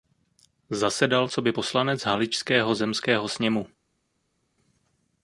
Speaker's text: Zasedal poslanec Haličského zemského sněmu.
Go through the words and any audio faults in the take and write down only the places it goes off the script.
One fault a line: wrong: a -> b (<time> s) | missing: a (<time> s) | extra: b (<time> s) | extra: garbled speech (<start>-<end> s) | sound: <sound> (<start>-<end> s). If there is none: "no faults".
extra: coby (1.3 s)